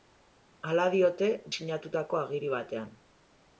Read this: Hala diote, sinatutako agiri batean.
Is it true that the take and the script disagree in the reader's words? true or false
false